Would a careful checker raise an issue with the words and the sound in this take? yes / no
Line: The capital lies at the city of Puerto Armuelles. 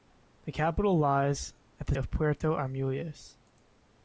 yes